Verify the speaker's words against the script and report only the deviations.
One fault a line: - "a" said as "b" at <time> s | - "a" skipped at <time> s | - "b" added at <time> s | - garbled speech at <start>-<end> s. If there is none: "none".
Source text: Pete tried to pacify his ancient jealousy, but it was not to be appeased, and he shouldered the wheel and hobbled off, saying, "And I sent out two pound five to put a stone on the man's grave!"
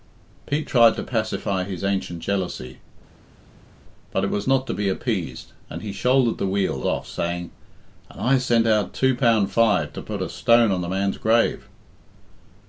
- "and hobbled" skipped at 6.8 s